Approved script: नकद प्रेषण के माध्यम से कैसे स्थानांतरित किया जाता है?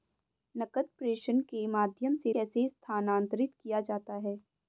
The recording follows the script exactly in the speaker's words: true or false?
true